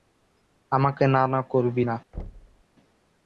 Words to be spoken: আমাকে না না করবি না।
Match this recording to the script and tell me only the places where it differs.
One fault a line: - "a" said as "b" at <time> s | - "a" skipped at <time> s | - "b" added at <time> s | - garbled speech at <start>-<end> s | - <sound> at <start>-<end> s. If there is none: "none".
- thud at 2.1-2.6 s